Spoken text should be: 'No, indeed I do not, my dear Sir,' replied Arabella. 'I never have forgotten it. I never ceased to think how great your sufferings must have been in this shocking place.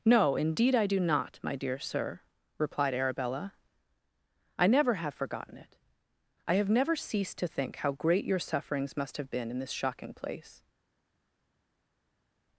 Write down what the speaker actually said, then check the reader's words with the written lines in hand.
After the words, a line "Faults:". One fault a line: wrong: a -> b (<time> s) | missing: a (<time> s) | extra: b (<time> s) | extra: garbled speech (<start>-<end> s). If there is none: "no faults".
'No, indeed I do not, my dear Sir,' replied Arabella. 'I never have forgotten it. I have never ceased to think how great your sufferings must have been in this shocking place.
Faults:
extra: have (6.5 s)